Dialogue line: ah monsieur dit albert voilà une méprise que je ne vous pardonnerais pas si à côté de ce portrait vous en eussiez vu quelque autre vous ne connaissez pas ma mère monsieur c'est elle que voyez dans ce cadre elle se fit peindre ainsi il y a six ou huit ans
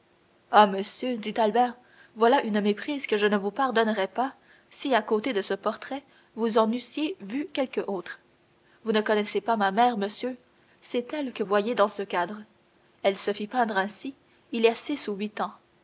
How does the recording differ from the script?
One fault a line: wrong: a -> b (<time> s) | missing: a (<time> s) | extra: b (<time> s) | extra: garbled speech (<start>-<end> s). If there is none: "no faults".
no faults